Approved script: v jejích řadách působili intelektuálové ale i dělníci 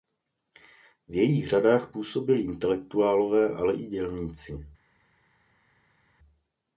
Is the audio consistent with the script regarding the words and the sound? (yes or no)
yes